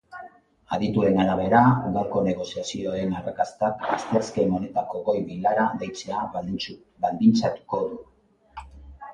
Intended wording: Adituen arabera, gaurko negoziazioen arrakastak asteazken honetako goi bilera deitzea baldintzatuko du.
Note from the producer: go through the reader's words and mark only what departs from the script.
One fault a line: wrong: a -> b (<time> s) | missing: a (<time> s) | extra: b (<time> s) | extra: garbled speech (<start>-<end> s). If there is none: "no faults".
no faults